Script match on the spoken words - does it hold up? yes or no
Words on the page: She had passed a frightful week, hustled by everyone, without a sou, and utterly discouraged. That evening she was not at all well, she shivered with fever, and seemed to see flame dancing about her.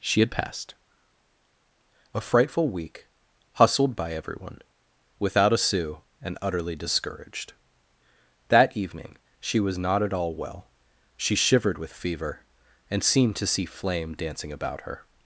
yes